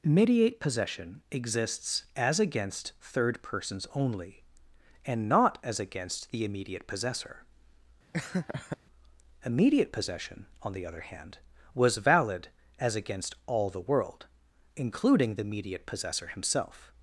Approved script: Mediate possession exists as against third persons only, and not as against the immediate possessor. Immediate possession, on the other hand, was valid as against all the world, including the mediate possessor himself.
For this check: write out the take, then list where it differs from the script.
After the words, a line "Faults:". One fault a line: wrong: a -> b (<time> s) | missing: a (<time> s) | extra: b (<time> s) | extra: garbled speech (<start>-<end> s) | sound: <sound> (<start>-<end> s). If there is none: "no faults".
Mediate possession exists as against third persons only, and not as against the immediate possessor. Immediate possession, on the other hand, was valid as against all the world, including the mediate possessor himself.
Faults:
sound: laugh (8.1-8.8 s)